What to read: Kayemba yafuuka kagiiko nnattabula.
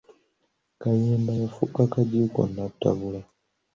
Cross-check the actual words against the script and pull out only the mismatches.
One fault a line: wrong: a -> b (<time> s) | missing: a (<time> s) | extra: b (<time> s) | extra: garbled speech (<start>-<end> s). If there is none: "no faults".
no faults